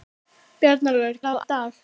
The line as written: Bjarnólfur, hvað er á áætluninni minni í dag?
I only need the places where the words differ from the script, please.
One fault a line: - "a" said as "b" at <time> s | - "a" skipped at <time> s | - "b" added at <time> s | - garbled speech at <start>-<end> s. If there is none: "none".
- "hvað" skipped at 1.2 s
- "áætluninni minni" skipped at 1.3 s